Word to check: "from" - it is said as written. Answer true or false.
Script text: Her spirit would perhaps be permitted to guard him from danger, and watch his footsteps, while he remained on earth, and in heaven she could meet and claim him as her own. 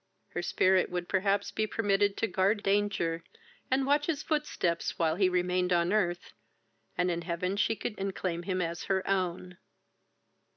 false